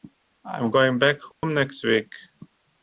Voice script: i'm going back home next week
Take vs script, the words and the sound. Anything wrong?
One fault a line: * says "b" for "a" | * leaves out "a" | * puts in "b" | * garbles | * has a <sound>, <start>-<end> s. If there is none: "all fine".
* has a dropout, 1.3-1.4 s